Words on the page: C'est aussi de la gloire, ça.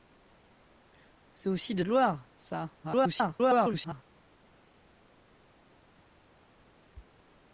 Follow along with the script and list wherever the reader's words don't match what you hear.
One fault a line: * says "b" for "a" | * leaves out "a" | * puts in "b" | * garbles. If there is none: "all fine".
* leaves out "la"
* garbles